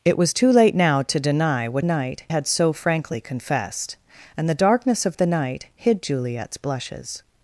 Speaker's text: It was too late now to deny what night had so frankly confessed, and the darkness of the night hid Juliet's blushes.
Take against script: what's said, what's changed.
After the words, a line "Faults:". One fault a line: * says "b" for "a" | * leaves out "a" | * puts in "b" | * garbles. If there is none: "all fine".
It was too late now to deny what night had so frankly confessed, and the darkness of the night hid Juliet's blushes.
Faults:
all fine